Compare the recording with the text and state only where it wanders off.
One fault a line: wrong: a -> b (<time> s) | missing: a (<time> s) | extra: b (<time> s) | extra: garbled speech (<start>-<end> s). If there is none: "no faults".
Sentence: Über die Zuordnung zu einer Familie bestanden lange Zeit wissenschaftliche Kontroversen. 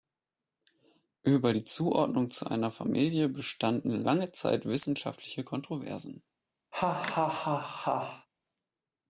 no faults